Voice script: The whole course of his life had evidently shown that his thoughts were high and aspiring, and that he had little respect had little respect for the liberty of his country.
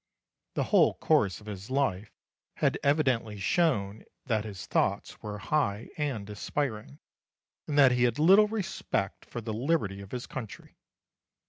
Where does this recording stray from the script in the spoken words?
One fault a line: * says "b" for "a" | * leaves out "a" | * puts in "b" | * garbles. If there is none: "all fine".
* leaves out "had little respect"